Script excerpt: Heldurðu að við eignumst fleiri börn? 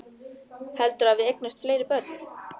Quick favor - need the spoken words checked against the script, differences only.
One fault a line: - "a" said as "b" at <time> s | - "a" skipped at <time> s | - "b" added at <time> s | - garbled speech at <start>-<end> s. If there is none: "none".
none